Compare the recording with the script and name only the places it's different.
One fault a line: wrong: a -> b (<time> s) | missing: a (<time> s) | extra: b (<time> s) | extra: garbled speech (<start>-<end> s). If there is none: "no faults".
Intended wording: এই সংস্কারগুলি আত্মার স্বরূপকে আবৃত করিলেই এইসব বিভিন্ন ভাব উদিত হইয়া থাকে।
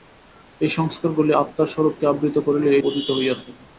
missing: এইসব বিভিন্ন ভাব (2.8 s)